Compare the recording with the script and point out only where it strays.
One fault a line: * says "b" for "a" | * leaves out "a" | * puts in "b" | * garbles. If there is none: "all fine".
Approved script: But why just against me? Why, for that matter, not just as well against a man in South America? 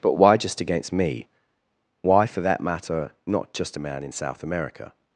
* leaves out "as well against"